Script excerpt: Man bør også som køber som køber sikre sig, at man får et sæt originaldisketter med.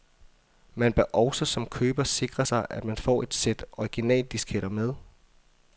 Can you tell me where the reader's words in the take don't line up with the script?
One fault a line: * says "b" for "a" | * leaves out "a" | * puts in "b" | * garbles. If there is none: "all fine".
* leaves out "som køber"